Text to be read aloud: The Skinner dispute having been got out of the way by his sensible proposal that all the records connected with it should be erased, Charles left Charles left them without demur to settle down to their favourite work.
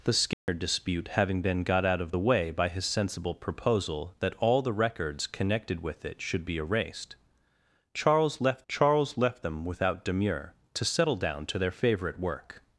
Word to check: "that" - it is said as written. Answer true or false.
true